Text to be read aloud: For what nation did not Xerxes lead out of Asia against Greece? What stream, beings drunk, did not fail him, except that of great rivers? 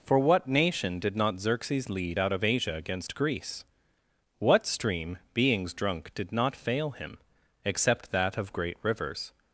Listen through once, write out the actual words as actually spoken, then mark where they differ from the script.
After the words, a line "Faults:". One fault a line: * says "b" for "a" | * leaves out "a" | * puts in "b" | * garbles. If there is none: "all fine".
For what nation did not Xerxes lead out of Asia against Greece? What stream, beings drunk, did not fail him, except that of great rivers?
Faults:
all fine